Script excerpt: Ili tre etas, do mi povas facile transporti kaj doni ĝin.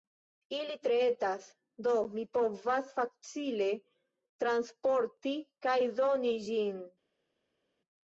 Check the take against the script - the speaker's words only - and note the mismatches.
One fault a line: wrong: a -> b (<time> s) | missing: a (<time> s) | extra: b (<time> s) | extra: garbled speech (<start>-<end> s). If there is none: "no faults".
no faults